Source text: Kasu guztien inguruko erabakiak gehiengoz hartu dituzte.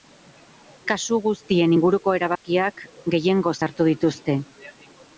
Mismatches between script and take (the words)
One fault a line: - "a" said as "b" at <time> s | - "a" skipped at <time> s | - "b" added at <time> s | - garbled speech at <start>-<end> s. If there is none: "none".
none